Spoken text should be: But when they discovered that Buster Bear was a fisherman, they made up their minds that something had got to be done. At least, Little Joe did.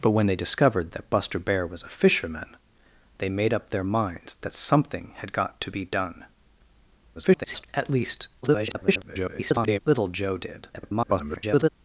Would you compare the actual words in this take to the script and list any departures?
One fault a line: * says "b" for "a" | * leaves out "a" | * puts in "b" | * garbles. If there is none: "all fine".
* garbles
* garbles
* garbles